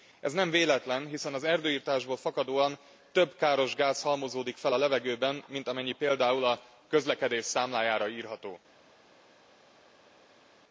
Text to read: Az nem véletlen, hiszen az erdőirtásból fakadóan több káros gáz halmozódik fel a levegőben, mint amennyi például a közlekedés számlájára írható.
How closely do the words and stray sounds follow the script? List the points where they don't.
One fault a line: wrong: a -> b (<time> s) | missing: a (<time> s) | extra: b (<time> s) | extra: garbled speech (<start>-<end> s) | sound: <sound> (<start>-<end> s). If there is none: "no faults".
wrong: Az -> Ez (0.2 s)